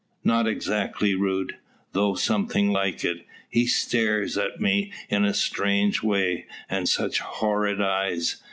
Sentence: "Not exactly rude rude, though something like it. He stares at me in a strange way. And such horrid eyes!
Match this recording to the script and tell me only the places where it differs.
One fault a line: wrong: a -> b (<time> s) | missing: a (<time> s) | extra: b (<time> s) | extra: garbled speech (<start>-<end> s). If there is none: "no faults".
missing: rude (1.6 s)